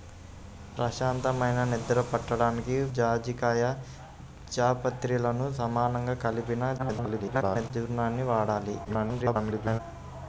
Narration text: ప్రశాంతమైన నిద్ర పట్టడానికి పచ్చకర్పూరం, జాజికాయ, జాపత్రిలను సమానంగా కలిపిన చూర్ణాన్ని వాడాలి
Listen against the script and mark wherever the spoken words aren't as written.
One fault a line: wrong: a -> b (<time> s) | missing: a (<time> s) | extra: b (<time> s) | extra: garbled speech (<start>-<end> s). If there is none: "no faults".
missing: పచ్చకర్పూరం (2.8 s)
extra: garbled speech (6.8-7.7 s)
extra: garbled speech (8.8-9.8 s)